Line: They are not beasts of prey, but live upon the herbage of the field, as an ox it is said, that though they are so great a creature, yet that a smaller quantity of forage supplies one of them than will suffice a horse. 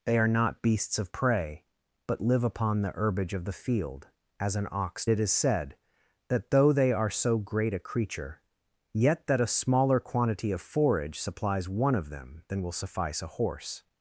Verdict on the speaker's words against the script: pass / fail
pass